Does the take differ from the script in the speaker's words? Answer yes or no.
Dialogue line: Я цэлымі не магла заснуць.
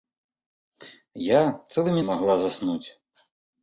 no